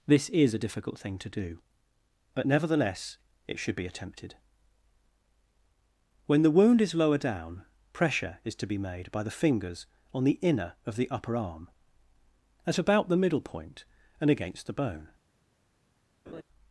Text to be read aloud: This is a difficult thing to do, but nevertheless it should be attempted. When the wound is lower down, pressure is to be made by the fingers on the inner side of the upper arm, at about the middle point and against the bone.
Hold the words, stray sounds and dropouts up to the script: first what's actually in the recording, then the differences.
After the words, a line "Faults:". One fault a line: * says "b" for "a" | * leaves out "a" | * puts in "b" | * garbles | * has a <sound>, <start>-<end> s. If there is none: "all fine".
This is a difficult thing to do, but nevertheless it should be attempted. When the wound is lower down, pressure is to be made by the fingers on the inner of the upper arm, at about the middle point and against the bone.
Faults:
* leaves out "side"
* has a laugh, 16.3-16.4 s